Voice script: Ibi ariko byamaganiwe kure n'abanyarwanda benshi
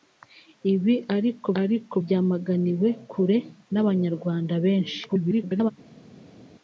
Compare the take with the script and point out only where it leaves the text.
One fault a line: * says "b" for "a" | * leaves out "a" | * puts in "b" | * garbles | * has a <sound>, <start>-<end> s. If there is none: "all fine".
* puts in "ariko"
* garbles